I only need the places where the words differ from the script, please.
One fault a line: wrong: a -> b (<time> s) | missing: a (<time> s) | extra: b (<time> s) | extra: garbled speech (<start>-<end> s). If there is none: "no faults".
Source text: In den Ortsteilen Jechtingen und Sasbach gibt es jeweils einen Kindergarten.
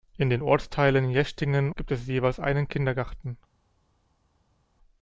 missing: und Sasbach (1.7 s)